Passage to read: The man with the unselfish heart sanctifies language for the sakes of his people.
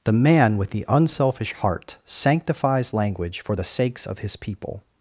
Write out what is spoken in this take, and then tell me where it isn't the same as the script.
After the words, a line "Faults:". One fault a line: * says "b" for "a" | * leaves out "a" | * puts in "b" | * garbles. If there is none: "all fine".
The man with the unselfish heart sanctifies language for the sakes of his people.
Faults:
all fine